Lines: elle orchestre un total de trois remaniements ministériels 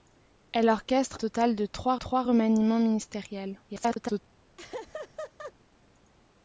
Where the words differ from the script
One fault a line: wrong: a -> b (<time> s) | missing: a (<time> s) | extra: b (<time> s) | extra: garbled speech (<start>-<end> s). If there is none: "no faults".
missing: un (1.2 s)
extra: trois (1.9 s)
extra: garbled speech (3.7-4.2 s)